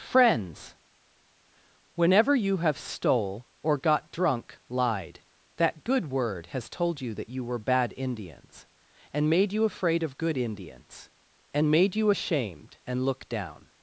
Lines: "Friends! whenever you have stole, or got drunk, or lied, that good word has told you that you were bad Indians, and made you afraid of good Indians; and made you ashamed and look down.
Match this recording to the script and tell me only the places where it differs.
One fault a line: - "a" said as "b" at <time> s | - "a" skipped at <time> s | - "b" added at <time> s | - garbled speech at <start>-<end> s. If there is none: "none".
- "or" skipped at 4.6 s